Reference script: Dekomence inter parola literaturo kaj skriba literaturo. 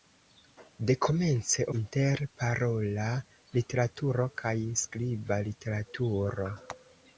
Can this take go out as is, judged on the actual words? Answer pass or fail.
pass